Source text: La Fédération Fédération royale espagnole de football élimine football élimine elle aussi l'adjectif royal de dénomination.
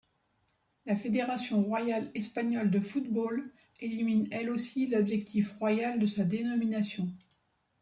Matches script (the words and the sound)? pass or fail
fail